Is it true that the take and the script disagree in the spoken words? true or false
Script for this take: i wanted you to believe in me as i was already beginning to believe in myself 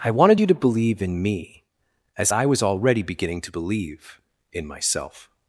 false